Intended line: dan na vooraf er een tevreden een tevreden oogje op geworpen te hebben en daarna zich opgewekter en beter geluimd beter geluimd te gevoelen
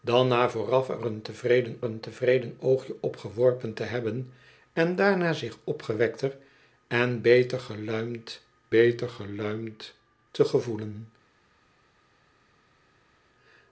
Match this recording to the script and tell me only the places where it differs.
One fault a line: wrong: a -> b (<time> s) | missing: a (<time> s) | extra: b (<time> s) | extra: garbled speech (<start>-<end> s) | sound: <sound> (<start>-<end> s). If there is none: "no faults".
no faults